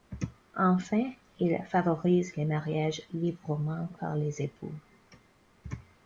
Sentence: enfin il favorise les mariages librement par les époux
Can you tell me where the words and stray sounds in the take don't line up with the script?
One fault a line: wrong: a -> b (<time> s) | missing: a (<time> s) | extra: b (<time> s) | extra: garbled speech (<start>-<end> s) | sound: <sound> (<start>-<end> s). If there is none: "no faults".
no faults